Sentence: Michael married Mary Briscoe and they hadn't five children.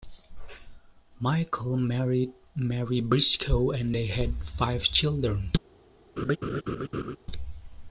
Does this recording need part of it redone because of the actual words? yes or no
yes